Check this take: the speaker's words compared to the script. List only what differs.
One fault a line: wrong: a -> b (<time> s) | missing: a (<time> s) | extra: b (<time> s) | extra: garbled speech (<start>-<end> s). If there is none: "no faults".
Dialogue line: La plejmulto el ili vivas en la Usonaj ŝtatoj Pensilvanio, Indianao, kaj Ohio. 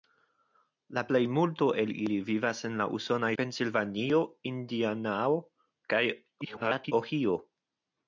missing: ŝtatoj (3.3 s)
extra: garbled speech (6.4-6.9 s)